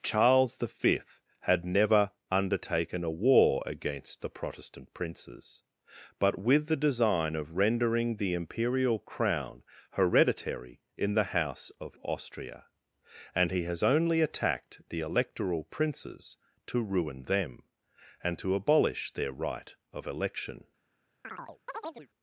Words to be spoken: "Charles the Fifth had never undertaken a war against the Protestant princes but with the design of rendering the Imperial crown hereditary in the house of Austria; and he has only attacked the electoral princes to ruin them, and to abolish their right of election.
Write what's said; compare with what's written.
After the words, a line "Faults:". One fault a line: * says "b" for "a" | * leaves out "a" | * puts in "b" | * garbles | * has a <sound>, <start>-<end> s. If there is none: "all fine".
"Charles the Fifth had never undertaken a war against the Protestant princes but with the design of rendering the Imperial crown hereditary in the house of Austria; and he has only attacked the electoral princes to ruin them, and to abolish their right of election.
Faults:
* has a chirp, 21.2-22.1 s